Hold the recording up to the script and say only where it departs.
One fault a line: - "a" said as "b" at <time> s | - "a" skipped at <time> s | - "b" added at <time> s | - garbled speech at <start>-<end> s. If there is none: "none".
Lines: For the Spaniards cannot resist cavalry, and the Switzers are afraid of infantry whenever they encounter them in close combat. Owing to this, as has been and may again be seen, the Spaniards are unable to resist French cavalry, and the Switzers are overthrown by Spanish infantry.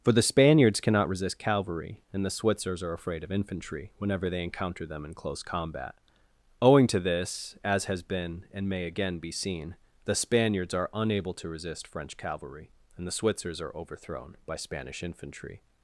none